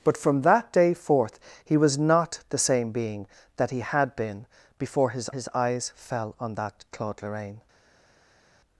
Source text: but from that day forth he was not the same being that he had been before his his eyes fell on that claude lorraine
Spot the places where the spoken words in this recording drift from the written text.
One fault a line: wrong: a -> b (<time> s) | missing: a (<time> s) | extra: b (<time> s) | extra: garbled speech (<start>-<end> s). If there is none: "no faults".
no faults